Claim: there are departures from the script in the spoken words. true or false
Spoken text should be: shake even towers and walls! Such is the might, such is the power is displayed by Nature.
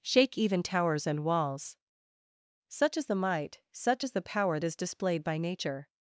false